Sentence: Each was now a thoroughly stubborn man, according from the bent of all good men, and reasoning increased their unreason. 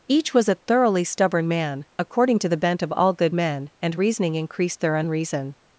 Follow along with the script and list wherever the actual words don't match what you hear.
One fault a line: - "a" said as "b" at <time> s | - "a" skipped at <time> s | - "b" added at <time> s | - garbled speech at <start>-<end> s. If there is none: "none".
- "now" skipped at 0.5 s
- "from" said as "to" at 2.4 s